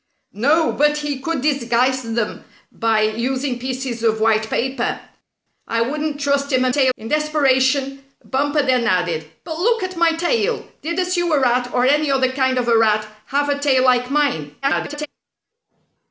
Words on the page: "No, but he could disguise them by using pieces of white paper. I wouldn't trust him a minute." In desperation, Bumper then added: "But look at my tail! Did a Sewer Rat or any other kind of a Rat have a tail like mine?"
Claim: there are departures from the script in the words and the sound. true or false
true